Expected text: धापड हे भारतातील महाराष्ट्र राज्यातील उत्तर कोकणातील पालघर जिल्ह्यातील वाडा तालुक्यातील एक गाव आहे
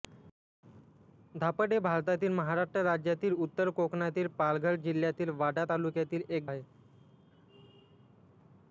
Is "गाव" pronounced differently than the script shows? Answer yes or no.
yes